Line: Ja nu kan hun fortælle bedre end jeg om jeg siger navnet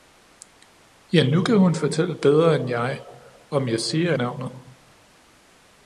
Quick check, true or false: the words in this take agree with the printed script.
true